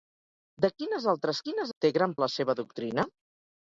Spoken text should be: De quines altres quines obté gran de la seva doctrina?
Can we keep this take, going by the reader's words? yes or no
yes